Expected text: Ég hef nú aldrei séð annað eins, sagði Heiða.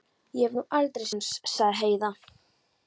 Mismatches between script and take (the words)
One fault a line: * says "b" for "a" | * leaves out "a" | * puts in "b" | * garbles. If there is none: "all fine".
* leaves out "séð annað"